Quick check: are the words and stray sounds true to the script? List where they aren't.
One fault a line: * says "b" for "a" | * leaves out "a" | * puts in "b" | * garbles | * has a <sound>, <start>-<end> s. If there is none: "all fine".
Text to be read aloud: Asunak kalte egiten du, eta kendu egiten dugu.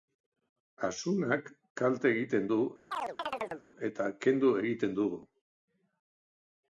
* has a chirp, 2.9-3.7 s